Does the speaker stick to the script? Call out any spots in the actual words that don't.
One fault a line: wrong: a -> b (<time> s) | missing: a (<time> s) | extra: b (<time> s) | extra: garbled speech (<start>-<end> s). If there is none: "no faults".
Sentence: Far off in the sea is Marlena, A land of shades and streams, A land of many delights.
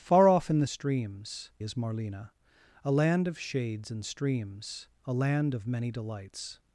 wrong: sea -> streams (0.7 s)